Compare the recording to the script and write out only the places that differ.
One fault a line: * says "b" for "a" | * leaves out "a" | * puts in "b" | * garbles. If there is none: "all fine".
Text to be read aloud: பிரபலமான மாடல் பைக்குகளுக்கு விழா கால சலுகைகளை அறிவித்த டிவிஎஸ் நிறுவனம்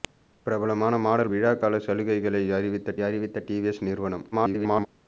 * leaves out "பைக்குகளுக்கு"
* puts in "அறிவித்த"
* garbles